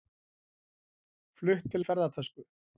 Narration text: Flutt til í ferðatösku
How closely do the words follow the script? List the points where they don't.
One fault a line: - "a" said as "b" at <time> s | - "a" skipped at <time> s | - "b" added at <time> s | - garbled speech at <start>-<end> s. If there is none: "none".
none